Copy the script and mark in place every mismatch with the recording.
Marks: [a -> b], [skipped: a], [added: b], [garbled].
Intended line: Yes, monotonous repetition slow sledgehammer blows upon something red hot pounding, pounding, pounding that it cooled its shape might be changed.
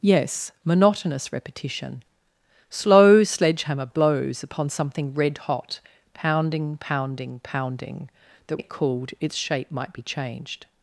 Yes, monotonous repetition slow sledgehammer blows upon something red hot pounding, pounding, pounding that it cooled its shape might be changed.